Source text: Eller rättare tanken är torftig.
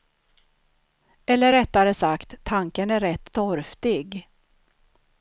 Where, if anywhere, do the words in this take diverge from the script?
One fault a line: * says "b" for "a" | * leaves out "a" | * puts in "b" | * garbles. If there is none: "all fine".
* puts in "sagt"
* puts in "rätt"